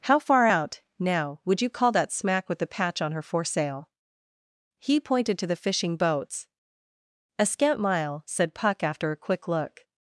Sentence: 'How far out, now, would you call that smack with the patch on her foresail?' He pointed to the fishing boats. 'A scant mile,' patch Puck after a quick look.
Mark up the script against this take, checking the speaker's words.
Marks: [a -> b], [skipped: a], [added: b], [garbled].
'How far out, now, would you call that smack with the patch on her foresail?' He pointed to the fishing boats. 'A scant mile,' [patch -> said] Puck after a quick look.